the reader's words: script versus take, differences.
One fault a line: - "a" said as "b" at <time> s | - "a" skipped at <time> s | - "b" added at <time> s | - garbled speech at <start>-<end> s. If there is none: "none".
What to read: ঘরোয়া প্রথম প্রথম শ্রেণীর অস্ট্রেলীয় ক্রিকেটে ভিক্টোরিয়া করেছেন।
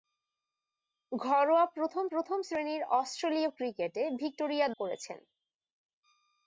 none